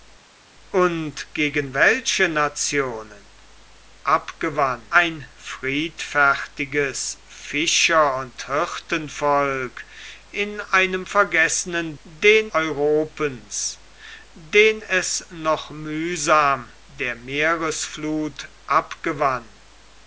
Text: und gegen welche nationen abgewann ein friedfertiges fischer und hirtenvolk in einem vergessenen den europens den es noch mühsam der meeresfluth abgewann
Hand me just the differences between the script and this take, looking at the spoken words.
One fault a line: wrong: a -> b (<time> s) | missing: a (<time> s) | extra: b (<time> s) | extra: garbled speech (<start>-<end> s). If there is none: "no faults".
no faults